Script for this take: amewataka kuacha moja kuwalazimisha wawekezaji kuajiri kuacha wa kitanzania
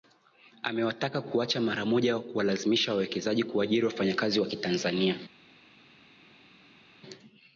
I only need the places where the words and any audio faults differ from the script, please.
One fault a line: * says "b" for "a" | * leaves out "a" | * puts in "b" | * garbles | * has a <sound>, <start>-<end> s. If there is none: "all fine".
* puts in "mara"
* says "wafanyakazi" for "kuacha"